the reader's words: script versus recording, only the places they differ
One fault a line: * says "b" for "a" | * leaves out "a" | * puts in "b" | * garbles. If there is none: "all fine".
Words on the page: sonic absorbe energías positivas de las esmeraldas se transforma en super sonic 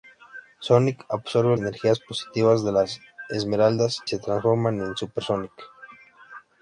all fine